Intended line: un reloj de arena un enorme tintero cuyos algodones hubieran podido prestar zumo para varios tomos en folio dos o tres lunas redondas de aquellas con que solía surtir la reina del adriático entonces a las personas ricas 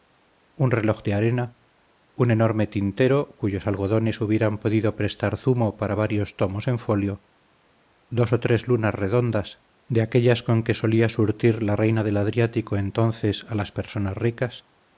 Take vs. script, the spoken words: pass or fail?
pass